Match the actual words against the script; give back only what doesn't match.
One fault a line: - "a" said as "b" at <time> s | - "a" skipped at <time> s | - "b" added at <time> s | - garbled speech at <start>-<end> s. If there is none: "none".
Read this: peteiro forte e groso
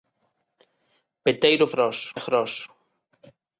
- "forte" said as "groso" at 1.7 s